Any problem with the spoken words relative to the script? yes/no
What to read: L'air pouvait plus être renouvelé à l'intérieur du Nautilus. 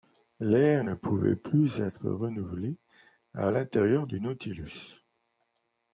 yes